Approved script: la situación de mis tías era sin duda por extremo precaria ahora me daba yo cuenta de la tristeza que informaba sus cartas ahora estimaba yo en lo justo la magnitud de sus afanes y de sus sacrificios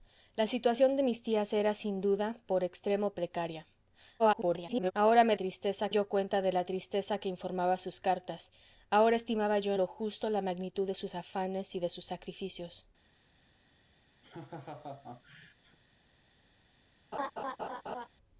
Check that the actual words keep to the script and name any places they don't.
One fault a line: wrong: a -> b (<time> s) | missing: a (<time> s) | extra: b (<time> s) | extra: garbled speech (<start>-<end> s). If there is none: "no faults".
extra: garbled speech (4.2-4.9 s)
wrong: daba -> tristeza (5.4 s)
missing: en (9.7 s)